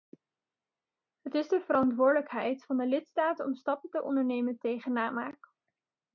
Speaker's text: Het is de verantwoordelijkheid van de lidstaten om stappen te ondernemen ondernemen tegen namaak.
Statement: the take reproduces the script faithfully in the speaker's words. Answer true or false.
false